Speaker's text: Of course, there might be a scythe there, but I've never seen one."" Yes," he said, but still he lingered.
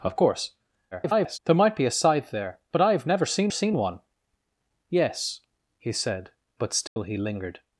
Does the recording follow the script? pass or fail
fail